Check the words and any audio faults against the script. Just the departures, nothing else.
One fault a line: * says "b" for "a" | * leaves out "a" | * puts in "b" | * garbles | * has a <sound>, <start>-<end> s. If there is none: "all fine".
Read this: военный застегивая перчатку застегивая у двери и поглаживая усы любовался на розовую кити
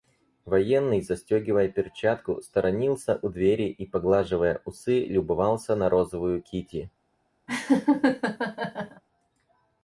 * says "сторонился" for "застегивая"
* has a laugh, 7.5-9.0 s